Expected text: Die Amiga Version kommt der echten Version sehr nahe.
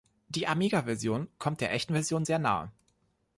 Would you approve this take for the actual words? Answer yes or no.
yes